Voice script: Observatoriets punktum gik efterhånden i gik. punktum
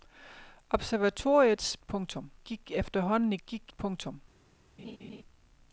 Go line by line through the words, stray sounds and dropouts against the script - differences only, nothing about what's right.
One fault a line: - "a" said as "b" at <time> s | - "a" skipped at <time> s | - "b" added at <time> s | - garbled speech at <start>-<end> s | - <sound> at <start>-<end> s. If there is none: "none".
- laugh at 4.8-5.2 s